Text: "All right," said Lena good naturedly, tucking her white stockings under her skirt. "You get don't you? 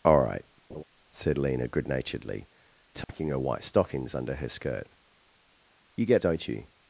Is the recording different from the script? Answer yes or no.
no